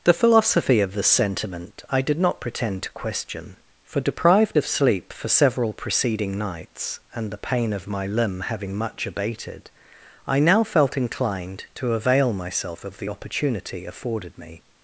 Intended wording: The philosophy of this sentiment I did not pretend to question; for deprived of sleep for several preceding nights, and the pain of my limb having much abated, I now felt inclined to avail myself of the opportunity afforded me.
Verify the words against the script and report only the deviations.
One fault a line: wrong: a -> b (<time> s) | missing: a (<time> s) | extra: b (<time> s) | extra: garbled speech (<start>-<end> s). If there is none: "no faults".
no faults